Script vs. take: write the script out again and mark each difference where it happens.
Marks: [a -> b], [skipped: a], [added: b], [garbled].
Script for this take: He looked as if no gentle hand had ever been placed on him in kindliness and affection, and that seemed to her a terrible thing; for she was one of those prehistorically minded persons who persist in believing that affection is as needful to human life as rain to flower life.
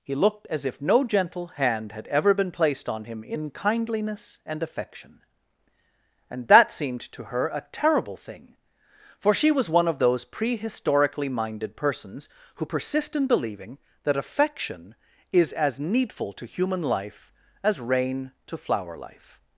He looked as if no gentle hand had ever been placed on him in kindliness and affection, and that seemed to her a terrible thing; for she was one of those prehistorically minded persons who persist in believing that affection is as needful to human life as rain to flower life.